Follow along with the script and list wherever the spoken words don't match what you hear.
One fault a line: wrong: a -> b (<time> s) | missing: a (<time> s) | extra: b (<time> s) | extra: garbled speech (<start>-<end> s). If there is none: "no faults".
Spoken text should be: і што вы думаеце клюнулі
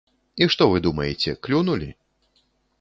no faults